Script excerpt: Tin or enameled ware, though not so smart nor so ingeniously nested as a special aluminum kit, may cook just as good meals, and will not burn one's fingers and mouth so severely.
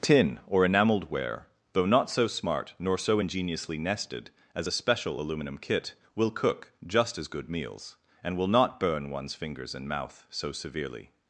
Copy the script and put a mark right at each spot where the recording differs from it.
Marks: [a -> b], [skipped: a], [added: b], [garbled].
Tin or enameled ware, though not so smart nor so ingeniously nested as a special aluminum kit, [may -> will] cook just as good meals, and will not burn one's fingers and mouth so severely.